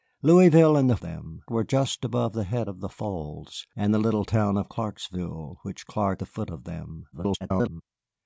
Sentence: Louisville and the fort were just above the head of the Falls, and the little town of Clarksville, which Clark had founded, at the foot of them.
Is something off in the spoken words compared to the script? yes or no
yes